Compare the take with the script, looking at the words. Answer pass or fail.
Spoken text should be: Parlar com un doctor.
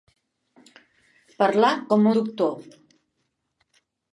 fail